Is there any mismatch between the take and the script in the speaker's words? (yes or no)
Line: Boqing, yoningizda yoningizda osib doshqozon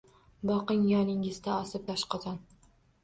yes